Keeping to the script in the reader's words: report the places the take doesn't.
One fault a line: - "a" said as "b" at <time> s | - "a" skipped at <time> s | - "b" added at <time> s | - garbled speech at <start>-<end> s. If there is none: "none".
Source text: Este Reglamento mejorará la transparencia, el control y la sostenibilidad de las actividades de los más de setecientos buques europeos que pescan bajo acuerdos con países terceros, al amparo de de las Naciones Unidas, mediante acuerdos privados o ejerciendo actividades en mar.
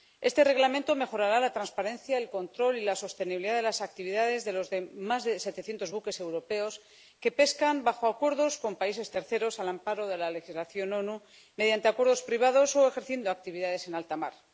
- "la legislación" added at 10.2 s
- "alta" added at 13.9 s